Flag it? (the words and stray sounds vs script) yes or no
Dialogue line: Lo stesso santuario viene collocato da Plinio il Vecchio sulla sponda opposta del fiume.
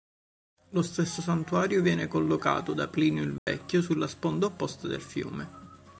yes